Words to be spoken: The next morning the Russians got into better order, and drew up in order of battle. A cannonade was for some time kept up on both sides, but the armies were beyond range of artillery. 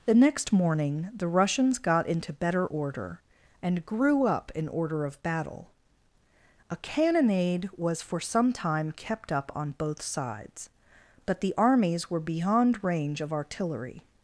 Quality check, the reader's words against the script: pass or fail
fail